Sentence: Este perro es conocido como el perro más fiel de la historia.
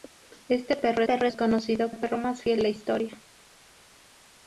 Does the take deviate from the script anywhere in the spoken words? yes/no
yes